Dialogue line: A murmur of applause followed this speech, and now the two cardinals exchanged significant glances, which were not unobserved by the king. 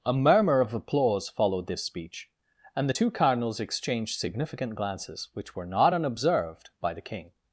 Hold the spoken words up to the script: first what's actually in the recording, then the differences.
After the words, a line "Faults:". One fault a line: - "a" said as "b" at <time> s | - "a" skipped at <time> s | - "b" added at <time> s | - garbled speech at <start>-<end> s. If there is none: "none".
A murmur of applause followed this speech, and the two cardinals exchanged significant glances, which were not unobserved by the king.
Faults:
- "now" skipped at 2.9 s